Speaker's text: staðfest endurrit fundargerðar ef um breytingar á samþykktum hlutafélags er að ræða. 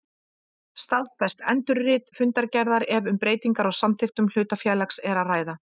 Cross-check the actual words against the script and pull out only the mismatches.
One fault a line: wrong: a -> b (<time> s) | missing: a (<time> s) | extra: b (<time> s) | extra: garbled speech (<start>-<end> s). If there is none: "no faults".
no faults